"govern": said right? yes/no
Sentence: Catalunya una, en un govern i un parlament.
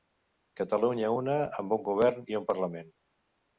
yes